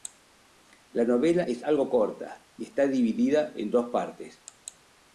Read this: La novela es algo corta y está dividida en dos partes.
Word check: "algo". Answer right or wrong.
right